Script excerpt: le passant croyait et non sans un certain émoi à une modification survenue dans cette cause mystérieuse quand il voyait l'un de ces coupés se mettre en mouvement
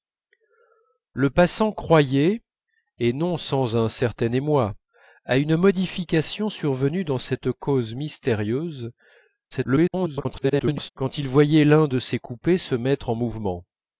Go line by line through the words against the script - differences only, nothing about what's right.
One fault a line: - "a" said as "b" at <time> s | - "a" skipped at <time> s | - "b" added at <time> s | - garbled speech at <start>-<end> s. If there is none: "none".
- garbled speech at 9.5-10.9 s